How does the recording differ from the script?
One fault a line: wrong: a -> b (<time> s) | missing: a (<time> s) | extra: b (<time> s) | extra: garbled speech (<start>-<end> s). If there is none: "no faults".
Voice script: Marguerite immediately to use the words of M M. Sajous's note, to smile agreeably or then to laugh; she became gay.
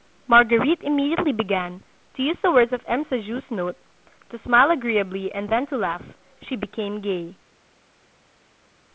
extra: began (1.3 s)
missing: M (3.0 s)
wrong: or -> and (5.3 s)